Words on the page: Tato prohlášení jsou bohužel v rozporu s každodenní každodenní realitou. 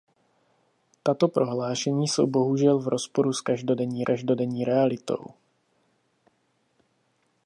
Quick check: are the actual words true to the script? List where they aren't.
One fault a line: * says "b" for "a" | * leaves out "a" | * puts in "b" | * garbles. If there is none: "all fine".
all fine